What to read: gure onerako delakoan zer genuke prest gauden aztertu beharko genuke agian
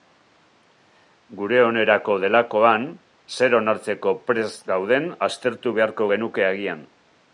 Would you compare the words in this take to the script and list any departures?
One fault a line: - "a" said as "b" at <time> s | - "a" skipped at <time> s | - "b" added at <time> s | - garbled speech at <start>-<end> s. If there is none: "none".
- "genuke" said as "onartzeko" at 3.6 s